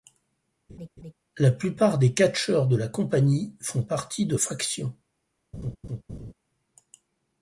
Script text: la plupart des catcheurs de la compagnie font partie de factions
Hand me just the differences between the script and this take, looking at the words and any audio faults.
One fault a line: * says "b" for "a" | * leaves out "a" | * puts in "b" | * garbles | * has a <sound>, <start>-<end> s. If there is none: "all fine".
* has a laugh, 0.7-1.1 s
* has a laugh, 5.5-6.3 s